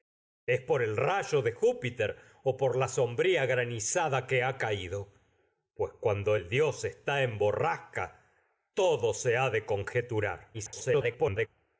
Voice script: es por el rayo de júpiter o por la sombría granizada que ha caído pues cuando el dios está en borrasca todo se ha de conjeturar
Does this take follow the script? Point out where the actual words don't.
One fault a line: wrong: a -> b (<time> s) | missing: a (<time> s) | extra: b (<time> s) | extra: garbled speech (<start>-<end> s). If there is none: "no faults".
extra: garbled speech (10.5-11.5 s)